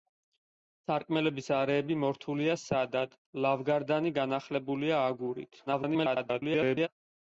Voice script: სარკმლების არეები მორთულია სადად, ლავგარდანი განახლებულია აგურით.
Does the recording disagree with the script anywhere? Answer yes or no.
yes